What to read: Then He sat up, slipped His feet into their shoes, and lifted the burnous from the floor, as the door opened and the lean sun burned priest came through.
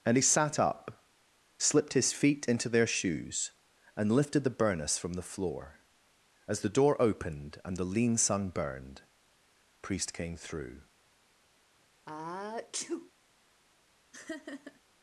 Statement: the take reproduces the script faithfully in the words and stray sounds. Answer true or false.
false